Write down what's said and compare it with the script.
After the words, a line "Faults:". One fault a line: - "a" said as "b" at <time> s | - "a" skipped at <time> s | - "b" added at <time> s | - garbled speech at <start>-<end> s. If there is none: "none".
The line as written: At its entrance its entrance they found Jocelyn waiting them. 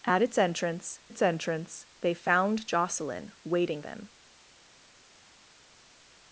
At its entrance its entrance they found Jocelyn waiting them.
Faults:
none